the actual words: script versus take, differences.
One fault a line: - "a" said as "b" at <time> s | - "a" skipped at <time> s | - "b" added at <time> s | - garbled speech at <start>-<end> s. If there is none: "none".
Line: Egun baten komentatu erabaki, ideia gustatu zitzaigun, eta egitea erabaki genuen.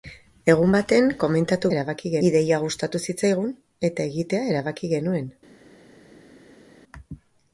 none